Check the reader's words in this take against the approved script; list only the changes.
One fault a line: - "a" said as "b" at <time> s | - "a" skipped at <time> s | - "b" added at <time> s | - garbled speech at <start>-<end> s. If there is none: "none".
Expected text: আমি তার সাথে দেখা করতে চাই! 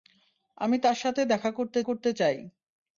- "করতে" added at 1.8 s